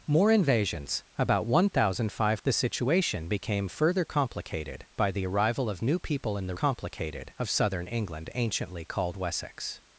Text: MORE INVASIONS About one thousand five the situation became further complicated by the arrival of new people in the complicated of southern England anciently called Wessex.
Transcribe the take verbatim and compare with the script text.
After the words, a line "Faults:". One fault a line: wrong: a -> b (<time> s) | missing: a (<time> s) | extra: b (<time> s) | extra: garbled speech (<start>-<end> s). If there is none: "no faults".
MORE INVASIONS About one thousand five the situation became further complicated by the arrival of new people in the complicated of southern England anciently called Wessex.
Faults:
no faults